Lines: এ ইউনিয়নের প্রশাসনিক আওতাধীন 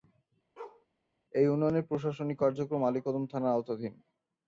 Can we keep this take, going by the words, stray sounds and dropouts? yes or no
no